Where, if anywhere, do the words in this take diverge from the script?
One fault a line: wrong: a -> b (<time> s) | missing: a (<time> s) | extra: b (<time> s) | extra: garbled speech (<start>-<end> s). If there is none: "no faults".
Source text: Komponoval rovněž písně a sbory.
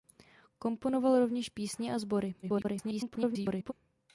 extra: garbled speech (2.4-3.7 s)